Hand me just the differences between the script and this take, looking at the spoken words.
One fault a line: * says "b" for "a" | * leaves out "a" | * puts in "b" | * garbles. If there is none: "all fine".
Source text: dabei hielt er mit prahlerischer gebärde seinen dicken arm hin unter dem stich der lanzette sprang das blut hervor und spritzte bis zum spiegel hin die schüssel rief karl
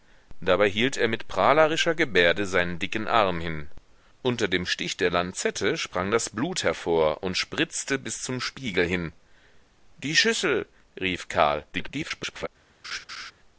* garbles